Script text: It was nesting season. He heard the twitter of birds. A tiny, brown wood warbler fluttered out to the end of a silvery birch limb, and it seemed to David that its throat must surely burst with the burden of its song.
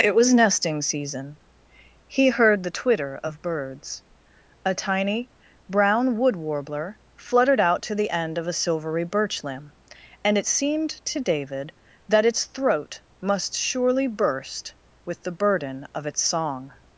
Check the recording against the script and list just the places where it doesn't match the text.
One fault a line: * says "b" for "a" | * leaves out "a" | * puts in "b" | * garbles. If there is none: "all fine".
all fine